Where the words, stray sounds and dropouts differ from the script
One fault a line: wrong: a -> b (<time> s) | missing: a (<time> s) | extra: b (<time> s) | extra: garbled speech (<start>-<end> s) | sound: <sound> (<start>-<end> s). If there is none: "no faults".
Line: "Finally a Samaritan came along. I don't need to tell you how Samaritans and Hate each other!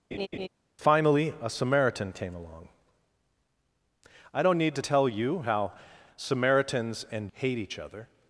sound: laugh (0.1-0.5 s)